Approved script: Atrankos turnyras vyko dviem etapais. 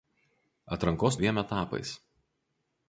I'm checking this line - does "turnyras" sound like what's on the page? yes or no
no